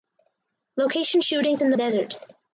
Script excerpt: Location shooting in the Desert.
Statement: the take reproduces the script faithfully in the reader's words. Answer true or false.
true